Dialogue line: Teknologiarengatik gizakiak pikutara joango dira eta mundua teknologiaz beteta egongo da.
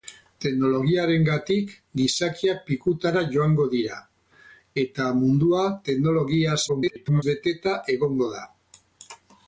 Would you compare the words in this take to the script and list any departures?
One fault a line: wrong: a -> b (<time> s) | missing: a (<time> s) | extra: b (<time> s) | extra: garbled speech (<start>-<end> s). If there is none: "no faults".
extra: garbled speech (6.7-7.2 s)